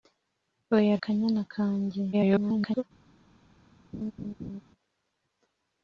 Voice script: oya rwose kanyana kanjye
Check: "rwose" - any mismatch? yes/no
yes